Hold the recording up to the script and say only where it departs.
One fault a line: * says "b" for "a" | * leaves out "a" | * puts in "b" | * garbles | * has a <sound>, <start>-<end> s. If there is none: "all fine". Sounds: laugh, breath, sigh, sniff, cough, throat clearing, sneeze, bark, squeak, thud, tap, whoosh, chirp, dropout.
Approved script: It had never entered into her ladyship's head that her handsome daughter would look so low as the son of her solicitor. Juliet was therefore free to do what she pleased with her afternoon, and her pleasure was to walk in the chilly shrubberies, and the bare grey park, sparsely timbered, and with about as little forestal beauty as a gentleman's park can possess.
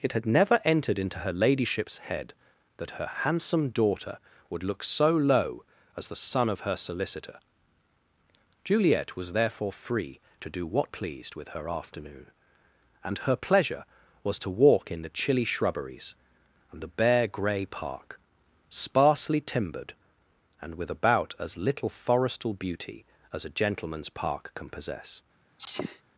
* leaves out "she"
* has a sneeze, 25.6-26.0 s